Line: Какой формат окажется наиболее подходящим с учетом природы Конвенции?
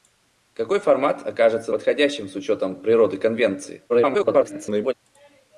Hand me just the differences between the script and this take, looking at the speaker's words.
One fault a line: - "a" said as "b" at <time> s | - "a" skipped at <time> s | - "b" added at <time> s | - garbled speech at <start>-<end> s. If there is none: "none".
- "наиболее" skipped at 1.7 s
- garbled speech at 3.9-4.9 s